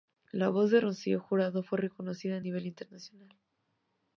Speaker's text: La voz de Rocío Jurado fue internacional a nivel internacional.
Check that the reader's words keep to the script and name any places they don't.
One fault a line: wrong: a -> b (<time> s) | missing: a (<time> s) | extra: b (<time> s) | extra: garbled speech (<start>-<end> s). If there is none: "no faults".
wrong: internacional -> reconocida (1.8 s)